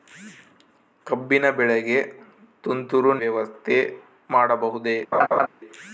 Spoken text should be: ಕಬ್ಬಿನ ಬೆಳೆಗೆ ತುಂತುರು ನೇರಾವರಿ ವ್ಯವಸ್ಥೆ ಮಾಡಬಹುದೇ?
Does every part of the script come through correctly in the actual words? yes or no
no